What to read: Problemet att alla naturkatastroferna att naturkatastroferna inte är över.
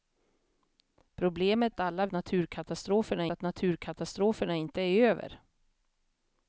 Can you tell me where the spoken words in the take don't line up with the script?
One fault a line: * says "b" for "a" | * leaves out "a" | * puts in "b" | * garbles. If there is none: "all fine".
all fine